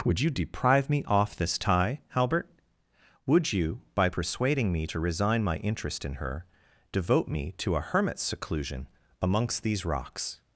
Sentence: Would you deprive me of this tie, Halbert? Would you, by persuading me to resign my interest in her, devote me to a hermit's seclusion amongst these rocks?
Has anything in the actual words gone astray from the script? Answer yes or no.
yes